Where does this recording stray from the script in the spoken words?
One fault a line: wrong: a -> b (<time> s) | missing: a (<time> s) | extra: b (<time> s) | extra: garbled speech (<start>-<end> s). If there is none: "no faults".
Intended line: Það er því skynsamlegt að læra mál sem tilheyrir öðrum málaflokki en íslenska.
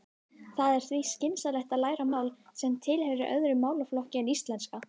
no faults